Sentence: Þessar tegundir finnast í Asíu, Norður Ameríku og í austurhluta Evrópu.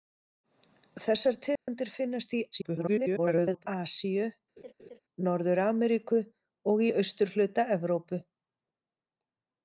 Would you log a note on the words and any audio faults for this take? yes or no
yes